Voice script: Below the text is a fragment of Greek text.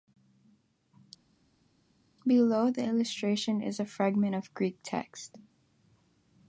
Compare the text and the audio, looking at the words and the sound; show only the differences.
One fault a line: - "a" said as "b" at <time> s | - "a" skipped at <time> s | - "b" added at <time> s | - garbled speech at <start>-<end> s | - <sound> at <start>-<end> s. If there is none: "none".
- "text" said as "illustration" at 2.8 s